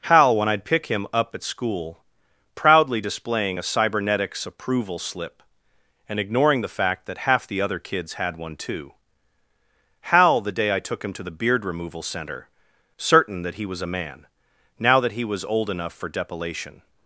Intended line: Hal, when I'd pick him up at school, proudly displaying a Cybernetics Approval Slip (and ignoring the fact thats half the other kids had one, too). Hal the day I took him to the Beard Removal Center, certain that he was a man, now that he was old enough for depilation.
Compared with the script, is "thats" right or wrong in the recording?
wrong